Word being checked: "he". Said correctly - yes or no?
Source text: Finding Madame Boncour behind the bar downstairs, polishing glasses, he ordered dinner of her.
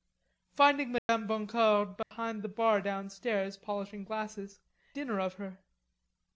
no